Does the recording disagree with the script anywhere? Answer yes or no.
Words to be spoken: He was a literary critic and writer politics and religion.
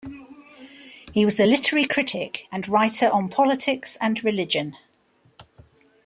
yes